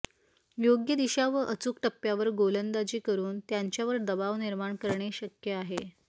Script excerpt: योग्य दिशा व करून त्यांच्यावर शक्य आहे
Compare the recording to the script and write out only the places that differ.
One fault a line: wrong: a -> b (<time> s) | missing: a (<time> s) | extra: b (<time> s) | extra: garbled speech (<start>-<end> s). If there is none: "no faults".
extra: अचूक टप्प्यावर गोलंदाजी (1.5 s)
extra: दबाव निर्माण करणे (4.0 s)